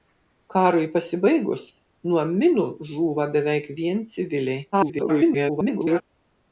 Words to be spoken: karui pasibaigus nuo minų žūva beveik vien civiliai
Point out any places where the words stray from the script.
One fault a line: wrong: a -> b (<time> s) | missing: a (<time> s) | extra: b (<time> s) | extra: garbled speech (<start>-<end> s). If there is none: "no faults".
extra: garbled speech (4.7-6.0 s)